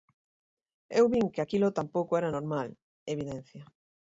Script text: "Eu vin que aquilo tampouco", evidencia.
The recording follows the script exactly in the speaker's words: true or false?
false